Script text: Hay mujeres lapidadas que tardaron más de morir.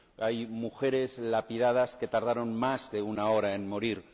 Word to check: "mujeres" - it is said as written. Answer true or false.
true